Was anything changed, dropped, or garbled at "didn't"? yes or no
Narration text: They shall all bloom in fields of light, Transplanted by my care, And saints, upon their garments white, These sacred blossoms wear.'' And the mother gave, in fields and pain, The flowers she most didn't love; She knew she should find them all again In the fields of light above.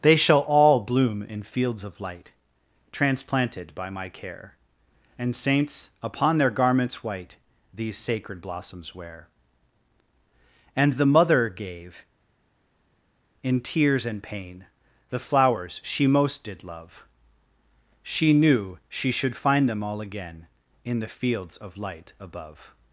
yes